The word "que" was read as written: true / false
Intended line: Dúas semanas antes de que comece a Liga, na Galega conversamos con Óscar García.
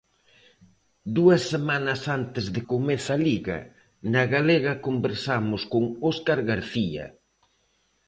false